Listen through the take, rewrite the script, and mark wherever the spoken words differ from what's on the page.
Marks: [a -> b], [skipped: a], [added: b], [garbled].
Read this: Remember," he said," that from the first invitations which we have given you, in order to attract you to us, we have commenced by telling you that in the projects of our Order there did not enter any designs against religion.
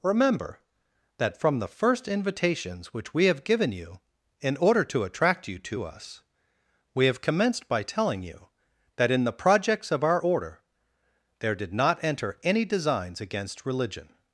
Remember," [skipped: he said,"] that from the first invitations which we have given you, in order to attract you to us, we have commenced by telling you that in the projects of our Order there did not enter any designs against religion.